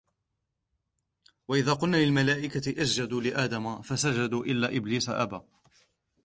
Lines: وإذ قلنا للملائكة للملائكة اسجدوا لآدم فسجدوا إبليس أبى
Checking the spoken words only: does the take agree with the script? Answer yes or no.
no